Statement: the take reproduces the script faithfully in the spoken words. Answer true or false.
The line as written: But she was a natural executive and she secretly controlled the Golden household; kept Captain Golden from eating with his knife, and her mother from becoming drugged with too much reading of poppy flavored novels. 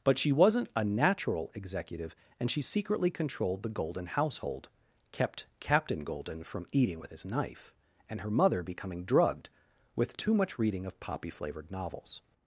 false